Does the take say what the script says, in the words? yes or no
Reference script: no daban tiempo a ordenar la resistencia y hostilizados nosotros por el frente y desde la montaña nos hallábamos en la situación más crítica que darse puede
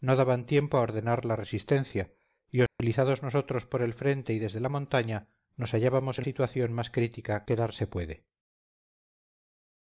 no